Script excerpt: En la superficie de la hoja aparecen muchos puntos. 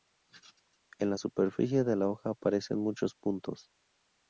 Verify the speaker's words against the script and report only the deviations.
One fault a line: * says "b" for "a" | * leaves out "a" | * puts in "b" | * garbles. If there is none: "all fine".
all fine